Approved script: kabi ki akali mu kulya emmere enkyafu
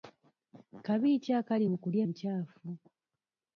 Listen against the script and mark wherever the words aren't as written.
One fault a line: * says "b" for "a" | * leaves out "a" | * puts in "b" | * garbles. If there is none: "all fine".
* leaves out "emmere"